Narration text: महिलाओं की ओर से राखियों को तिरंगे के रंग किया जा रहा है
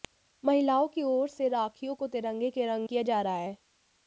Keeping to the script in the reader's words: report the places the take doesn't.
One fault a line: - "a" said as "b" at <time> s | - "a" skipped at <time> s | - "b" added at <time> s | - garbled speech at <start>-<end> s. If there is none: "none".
none